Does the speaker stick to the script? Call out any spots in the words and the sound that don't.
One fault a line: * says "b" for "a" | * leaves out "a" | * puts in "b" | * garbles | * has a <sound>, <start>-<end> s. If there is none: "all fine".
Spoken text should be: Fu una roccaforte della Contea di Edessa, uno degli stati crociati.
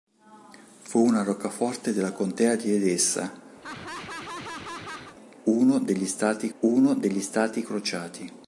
* has a laugh, 3.6-5.2 s
* puts in "uno degli stati"